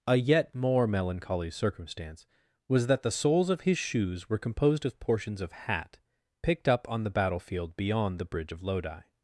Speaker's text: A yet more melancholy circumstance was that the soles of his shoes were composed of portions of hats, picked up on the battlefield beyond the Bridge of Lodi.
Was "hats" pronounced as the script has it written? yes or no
no